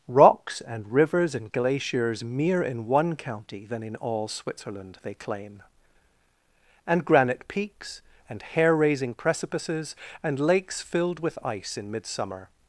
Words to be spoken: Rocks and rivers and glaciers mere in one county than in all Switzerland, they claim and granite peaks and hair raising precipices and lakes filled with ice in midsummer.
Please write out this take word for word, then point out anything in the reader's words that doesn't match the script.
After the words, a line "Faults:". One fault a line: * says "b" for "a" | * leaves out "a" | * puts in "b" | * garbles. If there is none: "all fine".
Rocks and rivers and glaciers mere in one county than in all Switzerland, they claim and granite peaks and hair raising precipices and lakes filled with ice in midsummer.
Faults:
all fine